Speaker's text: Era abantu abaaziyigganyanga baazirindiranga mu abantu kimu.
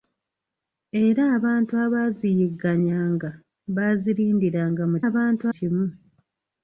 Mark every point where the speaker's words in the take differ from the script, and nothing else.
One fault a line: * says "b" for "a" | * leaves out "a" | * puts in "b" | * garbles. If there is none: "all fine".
all fine